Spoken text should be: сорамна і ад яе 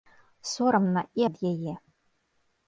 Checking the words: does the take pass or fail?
pass